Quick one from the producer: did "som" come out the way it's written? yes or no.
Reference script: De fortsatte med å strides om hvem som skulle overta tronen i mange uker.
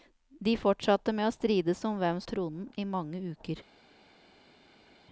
no